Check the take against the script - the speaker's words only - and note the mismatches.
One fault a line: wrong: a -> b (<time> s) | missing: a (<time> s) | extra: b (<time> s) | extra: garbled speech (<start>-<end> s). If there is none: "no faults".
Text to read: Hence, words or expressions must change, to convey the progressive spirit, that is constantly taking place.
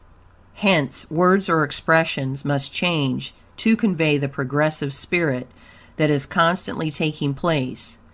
no faults